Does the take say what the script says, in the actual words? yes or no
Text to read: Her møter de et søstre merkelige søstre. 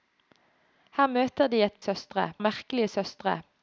yes